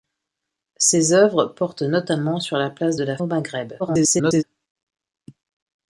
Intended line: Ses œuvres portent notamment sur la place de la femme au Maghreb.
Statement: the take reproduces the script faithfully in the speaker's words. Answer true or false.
false